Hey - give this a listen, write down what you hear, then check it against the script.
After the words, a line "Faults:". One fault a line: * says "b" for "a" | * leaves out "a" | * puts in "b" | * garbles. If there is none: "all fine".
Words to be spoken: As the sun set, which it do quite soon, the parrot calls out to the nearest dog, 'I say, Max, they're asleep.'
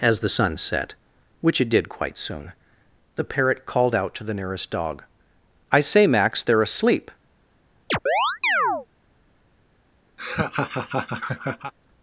As the sun set, which it did quite soon, the parrot called out to the nearest dog, 'I say, Max, they're asleep.'
Faults:
* says "did" for "do"
* says "called" for "calls"